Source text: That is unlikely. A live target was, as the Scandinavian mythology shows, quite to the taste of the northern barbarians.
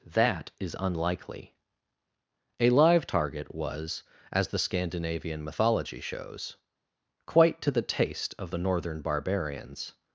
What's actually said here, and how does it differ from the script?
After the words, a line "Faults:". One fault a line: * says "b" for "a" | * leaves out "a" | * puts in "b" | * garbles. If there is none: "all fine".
That is unlikely. A live target was, as the Scandinavian mythology shows, quite to the taste of the northern barbarians.
Faults:
all fine